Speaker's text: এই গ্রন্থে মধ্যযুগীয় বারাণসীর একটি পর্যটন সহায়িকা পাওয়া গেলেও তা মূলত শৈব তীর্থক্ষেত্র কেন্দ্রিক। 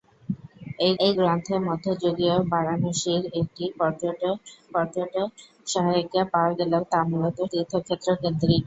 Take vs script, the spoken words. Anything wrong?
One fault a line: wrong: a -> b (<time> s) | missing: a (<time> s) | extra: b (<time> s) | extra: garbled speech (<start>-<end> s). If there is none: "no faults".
extra: এই (1.0 s)
extra: পর্যটন (4.7 s)
missing: শৈব (7.4 s)